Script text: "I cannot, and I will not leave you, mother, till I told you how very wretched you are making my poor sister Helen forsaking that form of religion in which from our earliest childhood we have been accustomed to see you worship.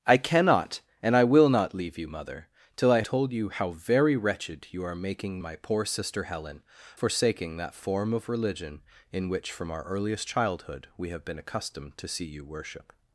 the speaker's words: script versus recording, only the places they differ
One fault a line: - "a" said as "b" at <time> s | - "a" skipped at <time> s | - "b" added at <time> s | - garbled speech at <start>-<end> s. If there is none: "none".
none